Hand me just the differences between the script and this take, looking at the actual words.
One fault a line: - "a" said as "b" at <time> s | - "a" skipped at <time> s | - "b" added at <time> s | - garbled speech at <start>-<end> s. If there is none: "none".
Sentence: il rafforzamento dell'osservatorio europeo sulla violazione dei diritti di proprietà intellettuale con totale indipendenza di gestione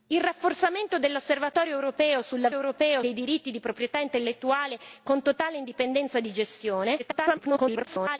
- "violazione" said as "europeo" at 2.5 s
- garbled speech at 7.0-8.2 s